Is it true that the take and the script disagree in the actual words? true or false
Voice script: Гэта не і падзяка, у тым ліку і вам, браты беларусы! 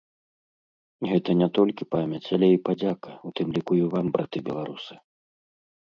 true